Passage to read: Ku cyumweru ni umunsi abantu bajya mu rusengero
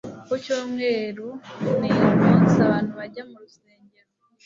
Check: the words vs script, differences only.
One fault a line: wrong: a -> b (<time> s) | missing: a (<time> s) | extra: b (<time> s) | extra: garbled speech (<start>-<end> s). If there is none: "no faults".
no faults